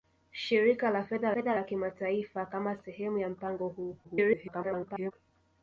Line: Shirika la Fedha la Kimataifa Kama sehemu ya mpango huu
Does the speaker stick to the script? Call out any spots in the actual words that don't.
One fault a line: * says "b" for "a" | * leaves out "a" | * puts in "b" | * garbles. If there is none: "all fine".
* puts in "Fedha"
* garbles